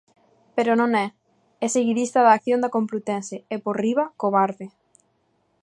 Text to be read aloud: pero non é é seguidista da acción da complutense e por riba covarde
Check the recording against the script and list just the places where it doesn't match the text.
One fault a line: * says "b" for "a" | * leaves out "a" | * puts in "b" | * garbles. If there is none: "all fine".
all fine